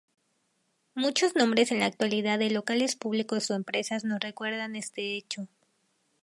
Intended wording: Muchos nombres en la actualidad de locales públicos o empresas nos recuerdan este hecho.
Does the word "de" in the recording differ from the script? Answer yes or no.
no